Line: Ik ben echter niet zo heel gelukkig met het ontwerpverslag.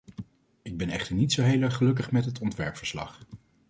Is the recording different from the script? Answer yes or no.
yes